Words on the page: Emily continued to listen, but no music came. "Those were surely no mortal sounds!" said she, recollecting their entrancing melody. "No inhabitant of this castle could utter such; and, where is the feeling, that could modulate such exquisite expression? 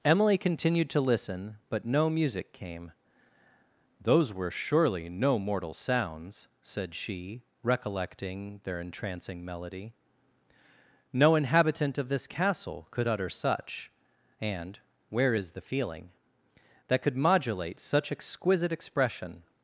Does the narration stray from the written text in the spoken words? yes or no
no